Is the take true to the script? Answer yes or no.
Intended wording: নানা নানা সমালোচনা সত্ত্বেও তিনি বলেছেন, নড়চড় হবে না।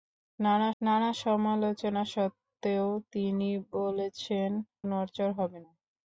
yes